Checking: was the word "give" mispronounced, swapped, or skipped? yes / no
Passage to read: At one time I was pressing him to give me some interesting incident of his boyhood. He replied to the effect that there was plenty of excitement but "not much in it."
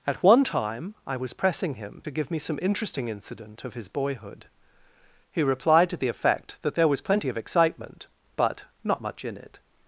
no